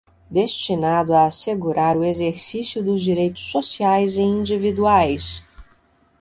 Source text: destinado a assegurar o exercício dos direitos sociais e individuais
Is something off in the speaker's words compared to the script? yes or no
no